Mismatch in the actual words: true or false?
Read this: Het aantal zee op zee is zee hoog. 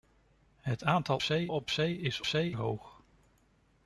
false